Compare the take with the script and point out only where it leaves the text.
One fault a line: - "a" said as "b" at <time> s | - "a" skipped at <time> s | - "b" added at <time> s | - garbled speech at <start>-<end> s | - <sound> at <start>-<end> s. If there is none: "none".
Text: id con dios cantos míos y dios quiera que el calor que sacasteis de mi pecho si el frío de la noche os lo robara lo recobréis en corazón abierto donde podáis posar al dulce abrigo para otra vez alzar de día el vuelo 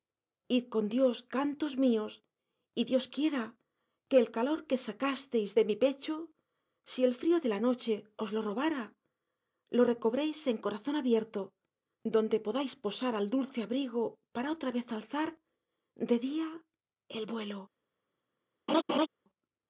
- laugh at 18.7-19.1 s